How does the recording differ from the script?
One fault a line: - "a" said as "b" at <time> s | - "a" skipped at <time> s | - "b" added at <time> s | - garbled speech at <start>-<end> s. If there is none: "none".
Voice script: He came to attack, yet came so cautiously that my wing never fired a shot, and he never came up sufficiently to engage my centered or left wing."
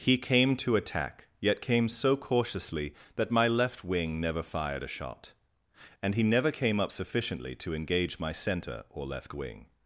- "left" added at 3.5 s
- "centered" said as "center" at 8.3 s